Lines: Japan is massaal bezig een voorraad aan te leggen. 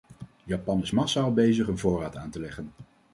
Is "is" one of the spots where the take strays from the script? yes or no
no